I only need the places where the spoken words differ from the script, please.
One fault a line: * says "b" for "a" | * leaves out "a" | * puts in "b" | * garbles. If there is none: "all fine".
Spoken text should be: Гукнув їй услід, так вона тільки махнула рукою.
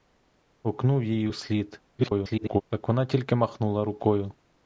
* garbles